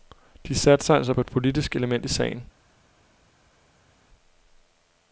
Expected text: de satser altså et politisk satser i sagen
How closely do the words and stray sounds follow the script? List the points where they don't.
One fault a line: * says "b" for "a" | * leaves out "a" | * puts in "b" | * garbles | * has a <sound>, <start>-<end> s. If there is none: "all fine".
* puts in "på"
* says "element" for "satser"